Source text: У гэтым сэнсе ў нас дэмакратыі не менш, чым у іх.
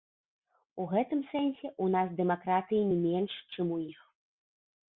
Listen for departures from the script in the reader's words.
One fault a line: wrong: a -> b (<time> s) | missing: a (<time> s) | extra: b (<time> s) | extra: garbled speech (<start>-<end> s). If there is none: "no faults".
no faults